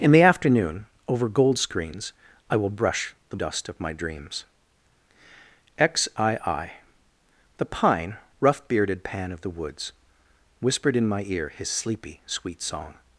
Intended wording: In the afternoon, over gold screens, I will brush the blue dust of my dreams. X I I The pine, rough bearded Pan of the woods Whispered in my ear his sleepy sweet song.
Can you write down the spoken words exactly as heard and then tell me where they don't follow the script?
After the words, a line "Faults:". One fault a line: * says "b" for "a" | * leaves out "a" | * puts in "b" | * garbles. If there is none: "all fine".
In the afternoon, over gold screens, I will brush the dust of my dreams. X I I The pine, rough bearded Pan of the woods Whispered in my ear his sleepy sweet song.
Faults:
* leaves out "blue"